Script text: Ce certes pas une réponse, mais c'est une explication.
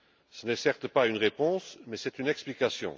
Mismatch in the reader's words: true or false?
true